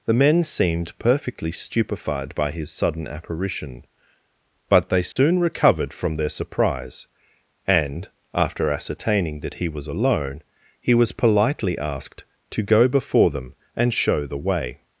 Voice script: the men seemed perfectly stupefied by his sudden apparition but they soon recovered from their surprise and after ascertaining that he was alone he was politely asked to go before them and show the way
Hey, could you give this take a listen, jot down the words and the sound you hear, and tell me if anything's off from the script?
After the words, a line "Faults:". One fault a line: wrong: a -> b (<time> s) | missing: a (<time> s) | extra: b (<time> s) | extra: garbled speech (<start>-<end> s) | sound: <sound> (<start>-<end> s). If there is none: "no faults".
the men seemed perfectly stupefied by his sudden apparition but they soon recovered from their surprise and after ascertaining that he was alone he was politely asked to go before them and show the way
Faults:
sound: dropout (5.1-5.2 s)